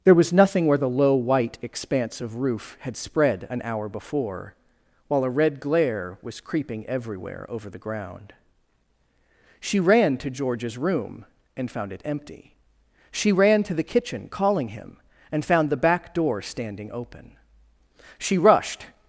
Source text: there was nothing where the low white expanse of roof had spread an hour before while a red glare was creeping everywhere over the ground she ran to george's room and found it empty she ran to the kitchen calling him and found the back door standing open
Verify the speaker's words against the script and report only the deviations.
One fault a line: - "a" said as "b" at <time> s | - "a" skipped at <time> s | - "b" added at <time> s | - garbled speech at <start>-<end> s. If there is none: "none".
- "she rushed" added at 18.2 s